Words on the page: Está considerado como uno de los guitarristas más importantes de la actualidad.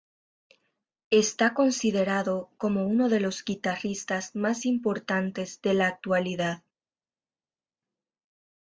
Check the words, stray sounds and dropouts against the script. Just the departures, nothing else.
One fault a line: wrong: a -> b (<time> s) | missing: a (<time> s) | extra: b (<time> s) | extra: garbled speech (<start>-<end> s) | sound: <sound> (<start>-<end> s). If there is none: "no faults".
no faults